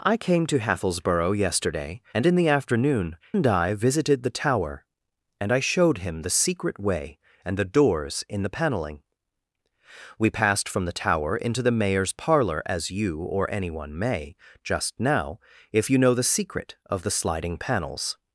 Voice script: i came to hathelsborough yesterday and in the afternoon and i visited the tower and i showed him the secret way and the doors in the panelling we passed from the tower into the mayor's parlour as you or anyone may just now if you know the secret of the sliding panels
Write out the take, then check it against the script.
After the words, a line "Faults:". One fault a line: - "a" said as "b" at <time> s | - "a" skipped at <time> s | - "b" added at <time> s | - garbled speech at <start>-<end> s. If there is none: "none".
i came to hathelsborough yesterday and in the afternoon and i visited the tower and i showed him the secret way and the doors in the panelling we passed from the tower into the mayor's parlour as you or anyone may just now if you know the secret of the sliding panels
Faults:
none